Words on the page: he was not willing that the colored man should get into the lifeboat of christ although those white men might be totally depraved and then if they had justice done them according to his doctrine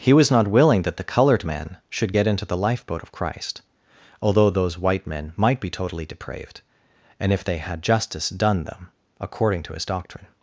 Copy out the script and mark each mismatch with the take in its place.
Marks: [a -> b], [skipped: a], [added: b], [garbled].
he was not willing that the colored man should get into the lifeboat of christ although those white men might be totally depraved and [skipped: then] if they had justice done them according to his doctrine